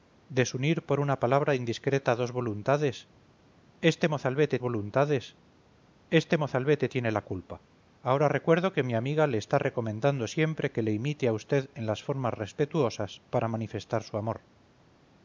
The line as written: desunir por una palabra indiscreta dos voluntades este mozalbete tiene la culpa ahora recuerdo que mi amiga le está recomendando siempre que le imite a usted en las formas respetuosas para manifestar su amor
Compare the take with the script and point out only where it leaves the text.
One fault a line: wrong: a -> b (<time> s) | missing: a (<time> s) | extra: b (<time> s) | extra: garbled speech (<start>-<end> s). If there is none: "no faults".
extra: voluntades este mozalbete (4.6 s)